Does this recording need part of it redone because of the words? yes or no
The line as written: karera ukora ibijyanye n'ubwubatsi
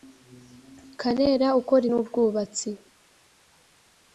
yes